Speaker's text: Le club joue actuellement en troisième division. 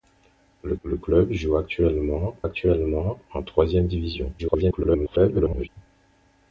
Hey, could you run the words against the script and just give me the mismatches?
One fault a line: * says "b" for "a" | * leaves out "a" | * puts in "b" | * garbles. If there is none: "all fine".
* puts in "le"
* puts in "actuellement"
* garbles